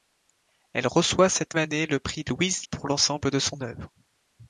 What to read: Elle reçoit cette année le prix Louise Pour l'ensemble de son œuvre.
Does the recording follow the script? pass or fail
pass